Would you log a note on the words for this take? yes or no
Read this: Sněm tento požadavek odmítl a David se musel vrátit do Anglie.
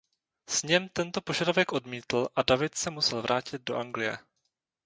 no